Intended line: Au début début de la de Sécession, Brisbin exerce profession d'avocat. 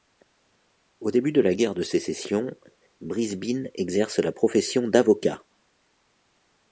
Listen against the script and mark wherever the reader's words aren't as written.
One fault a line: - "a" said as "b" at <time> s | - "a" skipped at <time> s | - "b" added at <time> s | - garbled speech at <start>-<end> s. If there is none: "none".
- "début" skipped at 1.3 s
- "guerre" added at 1.5 s
- "la" added at 4.2 s